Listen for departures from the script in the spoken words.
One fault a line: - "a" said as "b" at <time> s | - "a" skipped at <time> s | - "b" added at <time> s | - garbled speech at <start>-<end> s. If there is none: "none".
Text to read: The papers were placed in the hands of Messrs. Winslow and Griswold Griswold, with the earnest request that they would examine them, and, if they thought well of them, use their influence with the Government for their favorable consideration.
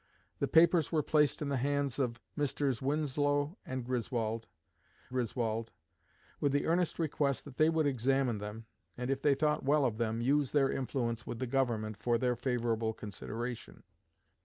none